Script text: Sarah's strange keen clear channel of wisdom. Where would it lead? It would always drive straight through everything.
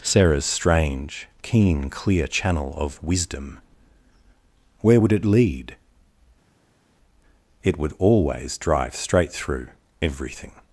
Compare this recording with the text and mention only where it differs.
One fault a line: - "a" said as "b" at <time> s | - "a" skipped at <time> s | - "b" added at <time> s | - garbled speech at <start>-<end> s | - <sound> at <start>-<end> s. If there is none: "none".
none